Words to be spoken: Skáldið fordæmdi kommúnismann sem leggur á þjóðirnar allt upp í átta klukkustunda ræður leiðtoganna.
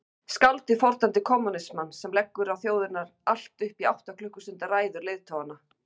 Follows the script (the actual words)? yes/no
yes